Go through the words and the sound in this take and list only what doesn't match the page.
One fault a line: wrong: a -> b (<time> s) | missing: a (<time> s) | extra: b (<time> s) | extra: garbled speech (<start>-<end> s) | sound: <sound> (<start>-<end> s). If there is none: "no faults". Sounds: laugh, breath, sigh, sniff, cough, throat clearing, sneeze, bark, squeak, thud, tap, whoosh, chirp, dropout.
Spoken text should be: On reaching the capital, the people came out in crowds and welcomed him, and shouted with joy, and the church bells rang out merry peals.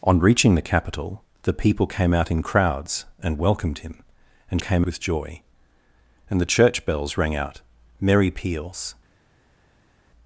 wrong: shouted -> came (4.6 s)